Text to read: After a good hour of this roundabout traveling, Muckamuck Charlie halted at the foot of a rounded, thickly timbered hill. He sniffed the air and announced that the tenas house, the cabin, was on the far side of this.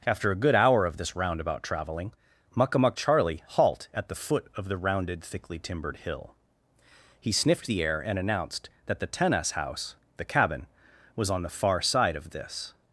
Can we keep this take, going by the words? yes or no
no